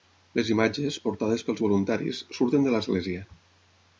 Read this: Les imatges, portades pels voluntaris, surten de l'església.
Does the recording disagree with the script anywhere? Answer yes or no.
no